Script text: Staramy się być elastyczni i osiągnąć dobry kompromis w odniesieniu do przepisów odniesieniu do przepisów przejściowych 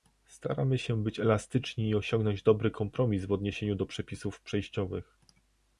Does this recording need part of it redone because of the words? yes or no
yes